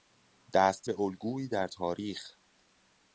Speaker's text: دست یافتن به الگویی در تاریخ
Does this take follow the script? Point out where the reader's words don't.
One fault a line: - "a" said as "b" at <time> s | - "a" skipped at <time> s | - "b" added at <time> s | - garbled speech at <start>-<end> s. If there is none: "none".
- "یافتن" skipped at 0.9 s